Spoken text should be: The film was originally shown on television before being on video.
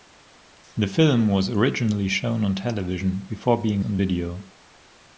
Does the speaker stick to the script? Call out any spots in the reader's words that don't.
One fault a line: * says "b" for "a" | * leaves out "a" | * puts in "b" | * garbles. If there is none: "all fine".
all fine